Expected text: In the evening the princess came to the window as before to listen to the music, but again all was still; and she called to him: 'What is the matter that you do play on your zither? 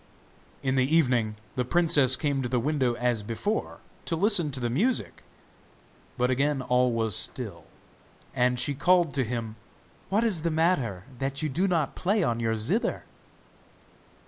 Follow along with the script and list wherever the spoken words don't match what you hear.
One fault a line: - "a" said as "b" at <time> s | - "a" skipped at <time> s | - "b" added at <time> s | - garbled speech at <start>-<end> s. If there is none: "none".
- "not" added at 11.7 s